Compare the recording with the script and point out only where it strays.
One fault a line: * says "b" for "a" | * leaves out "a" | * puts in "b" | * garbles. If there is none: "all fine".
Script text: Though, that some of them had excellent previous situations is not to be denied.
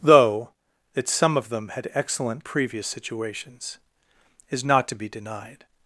all fine